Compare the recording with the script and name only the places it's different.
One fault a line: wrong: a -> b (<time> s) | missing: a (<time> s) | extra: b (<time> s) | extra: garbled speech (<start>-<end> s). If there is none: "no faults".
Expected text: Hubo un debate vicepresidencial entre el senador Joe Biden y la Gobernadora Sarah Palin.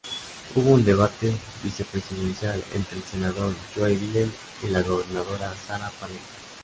no faults